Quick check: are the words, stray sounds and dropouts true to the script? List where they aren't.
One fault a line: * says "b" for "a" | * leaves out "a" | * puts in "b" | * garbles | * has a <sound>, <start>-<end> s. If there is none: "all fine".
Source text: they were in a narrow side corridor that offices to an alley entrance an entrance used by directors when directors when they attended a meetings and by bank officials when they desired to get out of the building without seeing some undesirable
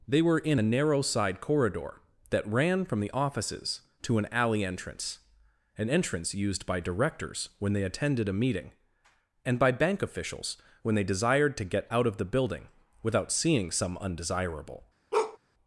* puts in "ran from the"
* leaves out "directors when"
* says "meeting" for "meetings"
* has a bark, 15.1-15.4 s